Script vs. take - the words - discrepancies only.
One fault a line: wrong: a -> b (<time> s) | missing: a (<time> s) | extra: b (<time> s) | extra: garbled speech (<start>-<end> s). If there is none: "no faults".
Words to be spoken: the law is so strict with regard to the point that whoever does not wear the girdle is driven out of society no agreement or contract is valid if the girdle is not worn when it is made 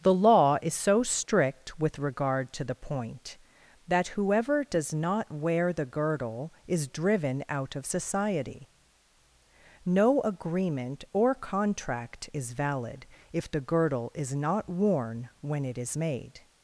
no faults